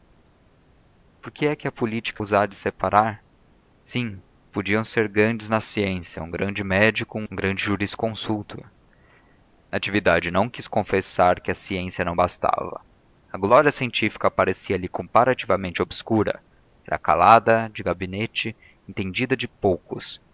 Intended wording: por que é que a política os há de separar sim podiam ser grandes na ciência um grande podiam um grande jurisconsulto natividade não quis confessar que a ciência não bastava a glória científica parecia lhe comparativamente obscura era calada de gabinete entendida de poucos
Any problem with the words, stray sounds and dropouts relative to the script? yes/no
yes